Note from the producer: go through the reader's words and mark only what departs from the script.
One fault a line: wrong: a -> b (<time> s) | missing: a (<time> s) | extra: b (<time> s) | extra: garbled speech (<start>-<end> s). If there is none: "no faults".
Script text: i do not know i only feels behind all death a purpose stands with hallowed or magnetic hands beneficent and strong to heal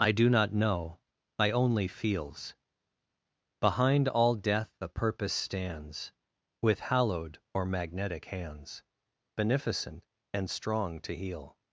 no faults